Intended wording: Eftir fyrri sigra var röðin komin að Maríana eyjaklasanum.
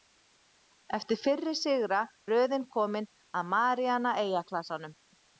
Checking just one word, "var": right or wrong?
wrong